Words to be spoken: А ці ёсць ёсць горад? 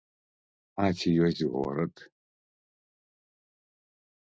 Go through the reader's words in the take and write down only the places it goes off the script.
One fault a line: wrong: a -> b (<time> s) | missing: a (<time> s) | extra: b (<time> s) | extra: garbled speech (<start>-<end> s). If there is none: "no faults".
missing: ёсць (1.4 s)